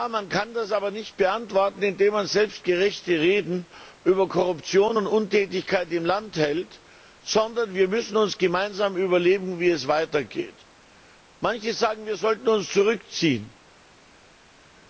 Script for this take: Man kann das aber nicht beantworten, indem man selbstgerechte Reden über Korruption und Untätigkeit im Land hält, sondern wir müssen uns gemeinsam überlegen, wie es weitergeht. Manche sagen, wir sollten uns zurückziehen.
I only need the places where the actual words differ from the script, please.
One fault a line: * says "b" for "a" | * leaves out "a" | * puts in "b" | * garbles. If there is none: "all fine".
all fine